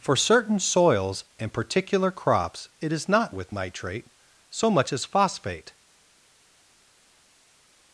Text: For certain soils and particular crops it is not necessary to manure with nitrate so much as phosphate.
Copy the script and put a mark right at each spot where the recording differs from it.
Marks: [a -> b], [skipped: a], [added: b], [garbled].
For certain soils and particular crops it is not [skipped: necessary to manure] with nitrate so much as phosphate.